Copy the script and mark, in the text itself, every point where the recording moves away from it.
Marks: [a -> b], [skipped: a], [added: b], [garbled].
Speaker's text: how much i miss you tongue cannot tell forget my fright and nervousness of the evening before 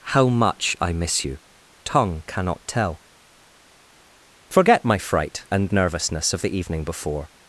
how much i miss you tongue cannot tell forget my fright and nervousness of the evening before